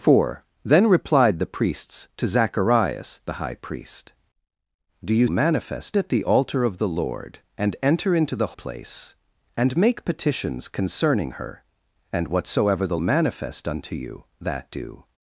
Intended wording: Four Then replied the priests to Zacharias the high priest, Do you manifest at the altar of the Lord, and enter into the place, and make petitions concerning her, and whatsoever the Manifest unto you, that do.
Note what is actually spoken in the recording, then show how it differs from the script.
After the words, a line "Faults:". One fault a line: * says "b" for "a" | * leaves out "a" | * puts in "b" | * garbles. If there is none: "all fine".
Four Then replied the priests to Zacharias the high priest, Do you manifest at the altar of the Lord, and enter into the place, and make petitions concerning her, and whatsoever the Manifest unto you, that do.
Faults:
all fine